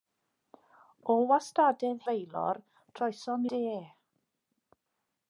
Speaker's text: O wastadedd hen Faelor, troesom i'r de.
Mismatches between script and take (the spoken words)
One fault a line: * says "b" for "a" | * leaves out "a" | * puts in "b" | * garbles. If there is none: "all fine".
* leaves out "hen"
* leaves out "i'r"